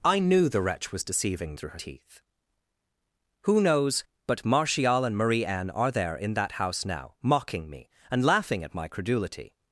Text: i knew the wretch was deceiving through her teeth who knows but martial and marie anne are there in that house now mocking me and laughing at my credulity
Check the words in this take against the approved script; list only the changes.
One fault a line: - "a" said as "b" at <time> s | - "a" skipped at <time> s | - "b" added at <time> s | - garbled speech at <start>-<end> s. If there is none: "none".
none